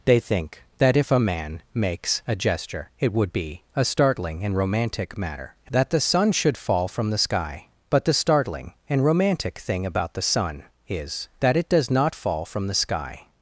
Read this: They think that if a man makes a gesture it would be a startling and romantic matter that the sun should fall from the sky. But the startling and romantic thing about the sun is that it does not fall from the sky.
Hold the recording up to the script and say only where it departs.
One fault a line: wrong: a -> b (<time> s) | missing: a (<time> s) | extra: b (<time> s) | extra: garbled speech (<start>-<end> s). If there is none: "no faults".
no faults